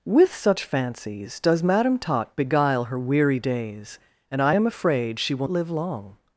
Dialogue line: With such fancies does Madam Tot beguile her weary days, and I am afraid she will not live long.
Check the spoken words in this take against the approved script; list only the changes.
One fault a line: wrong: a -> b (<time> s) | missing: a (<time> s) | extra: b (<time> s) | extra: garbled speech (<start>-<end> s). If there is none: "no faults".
missing: not (5.5 s)